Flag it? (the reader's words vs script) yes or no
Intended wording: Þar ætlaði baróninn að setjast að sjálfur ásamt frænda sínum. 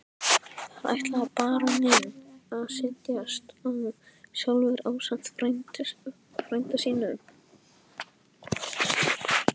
no